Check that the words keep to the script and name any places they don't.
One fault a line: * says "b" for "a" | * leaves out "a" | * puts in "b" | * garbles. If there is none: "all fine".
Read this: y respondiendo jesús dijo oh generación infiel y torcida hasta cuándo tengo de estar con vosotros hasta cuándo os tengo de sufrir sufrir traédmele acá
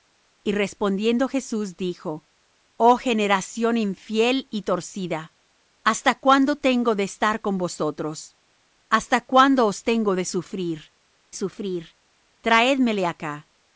all fine